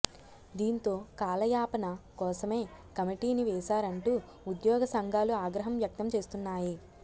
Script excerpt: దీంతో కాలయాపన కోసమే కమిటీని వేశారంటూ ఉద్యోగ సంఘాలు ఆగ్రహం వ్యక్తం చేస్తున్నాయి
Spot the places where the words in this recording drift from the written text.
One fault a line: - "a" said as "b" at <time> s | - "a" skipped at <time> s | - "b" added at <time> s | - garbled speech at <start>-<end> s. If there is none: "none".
none